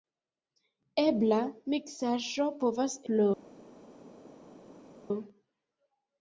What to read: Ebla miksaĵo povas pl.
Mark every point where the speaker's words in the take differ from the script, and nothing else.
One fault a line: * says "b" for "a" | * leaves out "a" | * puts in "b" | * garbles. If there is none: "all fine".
all fine